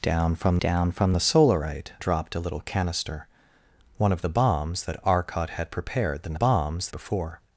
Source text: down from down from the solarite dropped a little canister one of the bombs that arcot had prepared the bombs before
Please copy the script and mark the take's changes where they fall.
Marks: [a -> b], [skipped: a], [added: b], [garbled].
down from down from the solarite dropped a little canister one of the bombs that arcot had prepared the bombs before